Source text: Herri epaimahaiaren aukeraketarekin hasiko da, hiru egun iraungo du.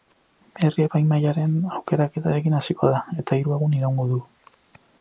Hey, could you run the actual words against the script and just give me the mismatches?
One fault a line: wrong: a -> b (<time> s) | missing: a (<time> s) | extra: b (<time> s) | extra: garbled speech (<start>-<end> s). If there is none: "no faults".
extra: eta (3.2 s)